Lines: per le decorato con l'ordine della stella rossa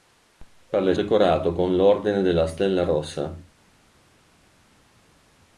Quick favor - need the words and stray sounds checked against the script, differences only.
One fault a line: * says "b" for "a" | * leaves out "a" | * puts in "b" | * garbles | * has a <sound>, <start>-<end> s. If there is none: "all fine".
all fine